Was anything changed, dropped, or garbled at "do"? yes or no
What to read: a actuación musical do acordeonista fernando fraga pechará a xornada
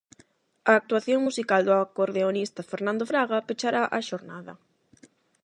no